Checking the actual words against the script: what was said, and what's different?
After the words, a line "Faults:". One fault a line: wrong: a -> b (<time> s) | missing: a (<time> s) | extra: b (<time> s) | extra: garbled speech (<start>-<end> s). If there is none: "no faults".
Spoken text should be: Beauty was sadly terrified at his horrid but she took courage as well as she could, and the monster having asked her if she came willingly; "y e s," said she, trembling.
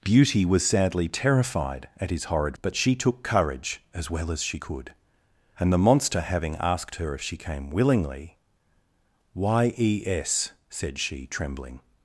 Beauty was sadly terrified at his horrid but she took courage as well as she could, and the monster having asked her if she came willingly; "y e s," said she, trembling.
Faults:
no faults